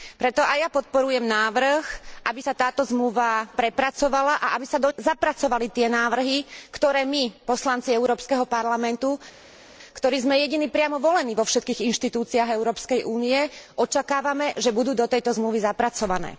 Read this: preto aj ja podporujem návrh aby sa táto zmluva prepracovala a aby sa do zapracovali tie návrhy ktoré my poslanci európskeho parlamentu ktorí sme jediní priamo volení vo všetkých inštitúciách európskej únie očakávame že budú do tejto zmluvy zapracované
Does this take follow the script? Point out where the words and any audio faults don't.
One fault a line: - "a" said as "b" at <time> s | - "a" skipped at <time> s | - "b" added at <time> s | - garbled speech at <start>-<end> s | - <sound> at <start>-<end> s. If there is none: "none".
none